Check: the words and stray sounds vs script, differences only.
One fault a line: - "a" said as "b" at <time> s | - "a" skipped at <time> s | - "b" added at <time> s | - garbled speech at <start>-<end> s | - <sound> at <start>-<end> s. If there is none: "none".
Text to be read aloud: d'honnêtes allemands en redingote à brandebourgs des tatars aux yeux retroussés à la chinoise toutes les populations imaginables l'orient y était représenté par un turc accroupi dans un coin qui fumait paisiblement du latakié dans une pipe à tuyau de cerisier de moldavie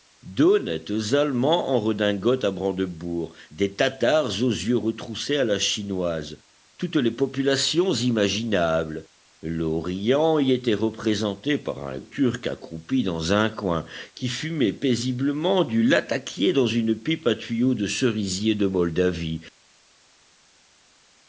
none